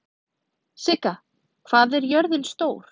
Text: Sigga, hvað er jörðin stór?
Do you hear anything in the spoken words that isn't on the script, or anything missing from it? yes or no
no